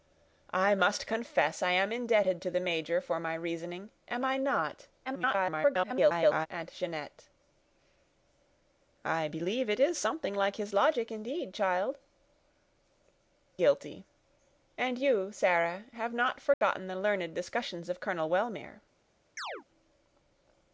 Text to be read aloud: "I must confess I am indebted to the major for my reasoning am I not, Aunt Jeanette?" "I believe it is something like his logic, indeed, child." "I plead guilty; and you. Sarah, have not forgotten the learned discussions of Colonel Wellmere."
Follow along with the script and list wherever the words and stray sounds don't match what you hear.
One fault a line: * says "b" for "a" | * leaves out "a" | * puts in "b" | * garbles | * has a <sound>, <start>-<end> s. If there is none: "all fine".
* garbles
* leaves out "I plead"
* has a dropout, 16.5-16.6 s
* has a chirp, 19.4-19.6 s